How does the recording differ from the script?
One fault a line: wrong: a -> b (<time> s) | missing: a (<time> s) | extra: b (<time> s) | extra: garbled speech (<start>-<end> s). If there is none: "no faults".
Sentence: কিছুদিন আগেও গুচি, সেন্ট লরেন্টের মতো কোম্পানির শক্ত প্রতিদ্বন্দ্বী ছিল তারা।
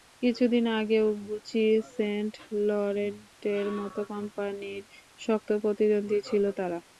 no faults